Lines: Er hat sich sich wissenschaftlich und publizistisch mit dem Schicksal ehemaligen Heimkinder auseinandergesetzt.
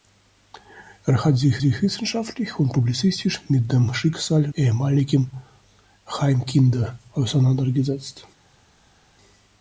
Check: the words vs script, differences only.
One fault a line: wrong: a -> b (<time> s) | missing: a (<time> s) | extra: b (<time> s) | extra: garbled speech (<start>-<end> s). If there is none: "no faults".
no faults